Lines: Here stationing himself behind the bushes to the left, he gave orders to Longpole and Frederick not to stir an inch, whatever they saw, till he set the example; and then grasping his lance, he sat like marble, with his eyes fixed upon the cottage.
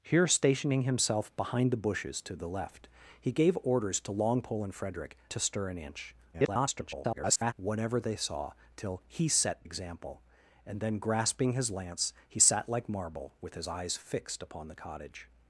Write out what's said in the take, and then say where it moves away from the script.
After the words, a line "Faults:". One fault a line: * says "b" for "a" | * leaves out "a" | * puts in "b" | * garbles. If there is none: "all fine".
Here stationing himself behind the bushes to the left, he gave orders to Longpole and Frederick to stir an inch, [garbled] whatever they saw, till he set example; and then grasping his lance, he sat like marble, with his eyes fixed upon the cottage.
Faults:
* leaves out "not"
* garbles
* leaves out "the"